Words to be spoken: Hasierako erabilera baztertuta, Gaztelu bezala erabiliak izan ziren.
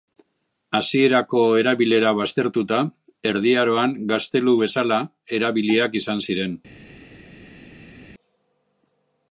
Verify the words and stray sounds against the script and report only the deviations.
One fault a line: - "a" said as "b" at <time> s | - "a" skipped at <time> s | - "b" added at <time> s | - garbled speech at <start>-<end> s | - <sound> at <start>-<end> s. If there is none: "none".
- "Erdi Aroan" added at 3.3 s